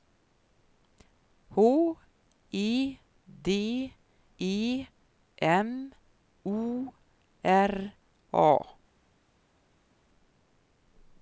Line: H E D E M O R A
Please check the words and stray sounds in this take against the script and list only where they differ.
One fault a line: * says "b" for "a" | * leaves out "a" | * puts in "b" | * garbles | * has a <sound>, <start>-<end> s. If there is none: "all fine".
all fine